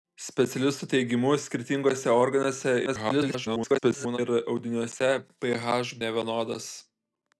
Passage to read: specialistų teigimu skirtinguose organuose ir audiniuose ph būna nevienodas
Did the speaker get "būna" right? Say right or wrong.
wrong